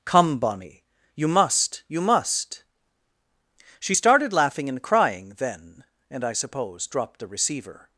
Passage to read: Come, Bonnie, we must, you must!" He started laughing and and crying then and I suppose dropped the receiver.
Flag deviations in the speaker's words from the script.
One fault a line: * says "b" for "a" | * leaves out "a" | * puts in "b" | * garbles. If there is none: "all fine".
* says "you" for "we"
* says "She" for "He"
* leaves out "and"